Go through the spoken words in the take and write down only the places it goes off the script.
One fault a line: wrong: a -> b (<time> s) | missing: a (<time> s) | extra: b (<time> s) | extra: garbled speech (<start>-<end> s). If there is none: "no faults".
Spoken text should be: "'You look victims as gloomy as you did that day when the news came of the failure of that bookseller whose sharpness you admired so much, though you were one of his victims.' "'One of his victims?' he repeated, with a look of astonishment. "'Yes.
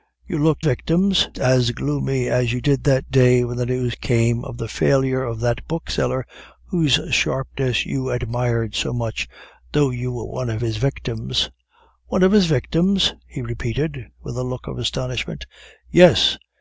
no faults